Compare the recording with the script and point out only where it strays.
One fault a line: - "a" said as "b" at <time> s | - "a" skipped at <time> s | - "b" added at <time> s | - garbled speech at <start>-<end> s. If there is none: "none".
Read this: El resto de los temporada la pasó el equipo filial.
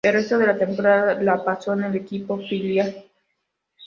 - "los" said as "la" at 0.5 s
- "en" added at 1.7 s